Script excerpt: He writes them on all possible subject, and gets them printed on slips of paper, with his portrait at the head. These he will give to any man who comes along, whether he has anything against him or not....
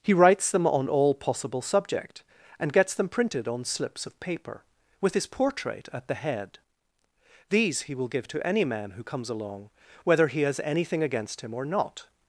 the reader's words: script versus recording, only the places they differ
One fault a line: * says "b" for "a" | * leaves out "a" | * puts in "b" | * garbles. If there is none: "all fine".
all fine